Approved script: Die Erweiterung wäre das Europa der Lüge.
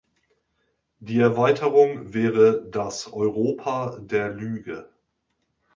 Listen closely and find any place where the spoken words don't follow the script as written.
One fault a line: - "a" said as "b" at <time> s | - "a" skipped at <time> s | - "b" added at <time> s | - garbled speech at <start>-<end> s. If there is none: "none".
none